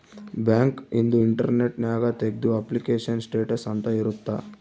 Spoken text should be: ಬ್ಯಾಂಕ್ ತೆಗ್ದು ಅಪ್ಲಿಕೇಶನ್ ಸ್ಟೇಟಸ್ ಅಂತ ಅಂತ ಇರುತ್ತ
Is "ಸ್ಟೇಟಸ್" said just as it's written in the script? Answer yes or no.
yes